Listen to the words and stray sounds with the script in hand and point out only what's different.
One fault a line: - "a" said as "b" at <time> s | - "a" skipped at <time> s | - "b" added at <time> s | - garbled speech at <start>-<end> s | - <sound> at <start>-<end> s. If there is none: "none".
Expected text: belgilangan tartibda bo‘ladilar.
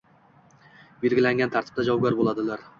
- "javobgar" added at 1.9 s